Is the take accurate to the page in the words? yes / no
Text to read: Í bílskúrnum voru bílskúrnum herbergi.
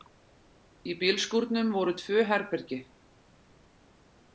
no